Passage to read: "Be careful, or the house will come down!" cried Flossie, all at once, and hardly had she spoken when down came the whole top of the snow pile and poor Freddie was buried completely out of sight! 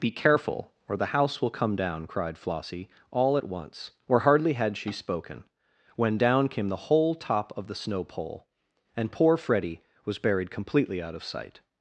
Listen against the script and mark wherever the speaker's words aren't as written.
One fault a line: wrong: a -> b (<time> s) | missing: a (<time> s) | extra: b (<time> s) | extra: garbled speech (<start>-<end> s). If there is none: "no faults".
wrong: and -> or (4.1 s)
wrong: pile -> pole (8.0 s)